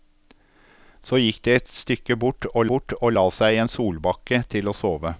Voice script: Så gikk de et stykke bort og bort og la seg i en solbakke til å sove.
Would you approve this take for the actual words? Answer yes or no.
yes